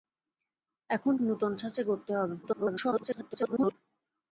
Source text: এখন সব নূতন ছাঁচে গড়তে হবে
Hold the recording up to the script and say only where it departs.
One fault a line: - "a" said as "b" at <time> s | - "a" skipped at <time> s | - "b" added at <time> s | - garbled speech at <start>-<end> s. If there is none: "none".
- "সব" skipped at 1.1 s
- garbled speech at 2.4-3.7 s